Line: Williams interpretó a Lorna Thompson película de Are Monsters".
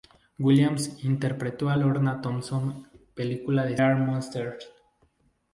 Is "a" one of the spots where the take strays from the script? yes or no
no